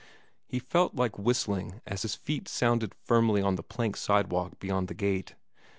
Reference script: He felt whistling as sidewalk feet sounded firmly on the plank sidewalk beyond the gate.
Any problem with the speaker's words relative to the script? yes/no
yes